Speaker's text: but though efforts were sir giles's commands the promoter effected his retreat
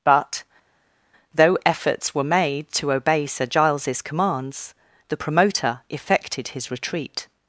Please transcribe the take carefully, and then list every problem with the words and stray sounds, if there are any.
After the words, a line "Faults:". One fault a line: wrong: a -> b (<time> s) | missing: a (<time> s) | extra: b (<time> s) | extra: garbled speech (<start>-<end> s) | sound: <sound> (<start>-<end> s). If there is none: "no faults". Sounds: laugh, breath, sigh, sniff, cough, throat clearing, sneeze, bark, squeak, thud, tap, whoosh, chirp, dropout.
but though efforts were made to obey sir giles's commands the promoter effected his retreat
Faults:
extra: made to obey (2.2 s)